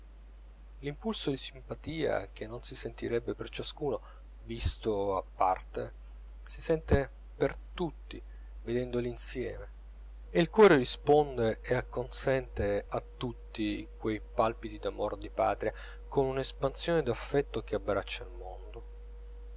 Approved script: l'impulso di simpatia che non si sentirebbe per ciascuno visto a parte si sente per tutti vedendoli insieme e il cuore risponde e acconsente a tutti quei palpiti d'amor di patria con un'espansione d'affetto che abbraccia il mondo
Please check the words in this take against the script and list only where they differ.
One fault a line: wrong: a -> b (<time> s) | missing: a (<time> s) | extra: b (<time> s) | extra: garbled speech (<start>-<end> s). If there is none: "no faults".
no faults